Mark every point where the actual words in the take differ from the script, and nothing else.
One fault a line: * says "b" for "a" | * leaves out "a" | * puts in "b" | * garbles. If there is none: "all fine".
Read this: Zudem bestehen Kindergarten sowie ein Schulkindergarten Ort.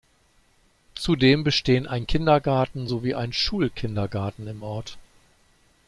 * puts in "ein"
* puts in "im"